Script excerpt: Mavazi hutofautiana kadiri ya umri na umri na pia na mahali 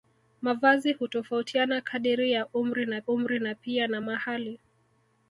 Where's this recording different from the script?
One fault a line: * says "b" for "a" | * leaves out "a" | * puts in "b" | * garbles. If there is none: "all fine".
all fine